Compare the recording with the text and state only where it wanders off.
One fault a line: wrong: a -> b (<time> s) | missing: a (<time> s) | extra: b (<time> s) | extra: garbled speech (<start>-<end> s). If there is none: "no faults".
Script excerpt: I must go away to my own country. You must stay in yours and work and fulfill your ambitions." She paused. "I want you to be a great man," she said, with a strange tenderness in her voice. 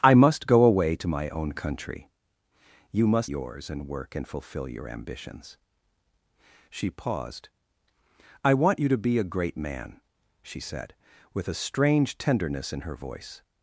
missing: stay in (3.3 s)